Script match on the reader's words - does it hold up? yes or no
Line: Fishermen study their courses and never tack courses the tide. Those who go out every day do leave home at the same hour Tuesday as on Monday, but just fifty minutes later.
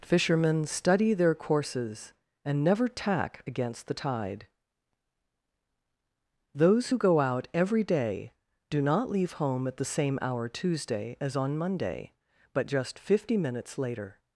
no